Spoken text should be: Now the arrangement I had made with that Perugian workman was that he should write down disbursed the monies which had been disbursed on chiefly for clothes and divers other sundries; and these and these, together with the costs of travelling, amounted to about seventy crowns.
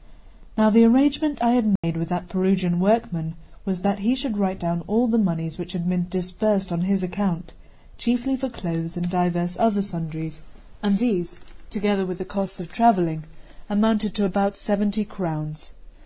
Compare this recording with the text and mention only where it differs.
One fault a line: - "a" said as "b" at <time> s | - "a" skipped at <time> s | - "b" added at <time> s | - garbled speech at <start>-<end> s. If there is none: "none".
- "disbursed" said as "all" at 4.9 s
- "his account" added at 6.8 s
- "and these" skipped at 11.3 s